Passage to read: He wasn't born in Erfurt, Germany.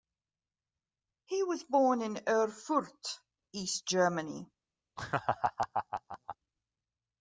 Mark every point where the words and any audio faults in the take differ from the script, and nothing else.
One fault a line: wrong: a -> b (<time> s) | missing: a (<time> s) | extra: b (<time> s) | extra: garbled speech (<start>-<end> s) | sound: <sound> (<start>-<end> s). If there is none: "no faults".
wrong: wasn't -> was (1.4 s)
extra: East (3.5 s)
sound: laugh (5.0-6.4 s)